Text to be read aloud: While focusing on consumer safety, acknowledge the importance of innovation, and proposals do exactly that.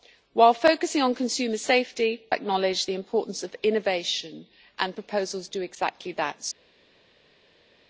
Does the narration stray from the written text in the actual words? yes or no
no